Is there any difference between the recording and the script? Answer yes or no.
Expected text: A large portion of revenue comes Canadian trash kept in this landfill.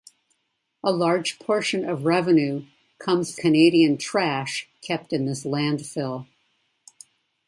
no